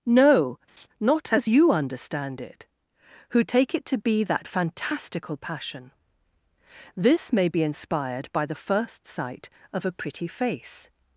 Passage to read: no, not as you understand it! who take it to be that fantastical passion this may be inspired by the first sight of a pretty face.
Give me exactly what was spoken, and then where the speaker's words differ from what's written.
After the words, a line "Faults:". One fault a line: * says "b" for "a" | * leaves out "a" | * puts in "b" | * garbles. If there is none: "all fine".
no, not as you understand it! who take it to be that fantastical passion this may be inspired by the first sight of a pretty face.
Faults:
all fine